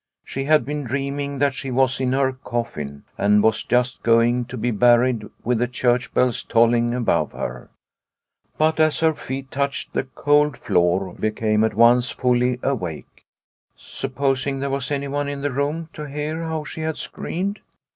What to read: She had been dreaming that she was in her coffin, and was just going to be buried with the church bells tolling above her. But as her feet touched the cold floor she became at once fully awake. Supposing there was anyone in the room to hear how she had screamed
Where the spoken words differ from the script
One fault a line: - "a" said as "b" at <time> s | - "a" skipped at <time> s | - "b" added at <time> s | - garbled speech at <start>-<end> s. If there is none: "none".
- "she" skipped at 11.2 s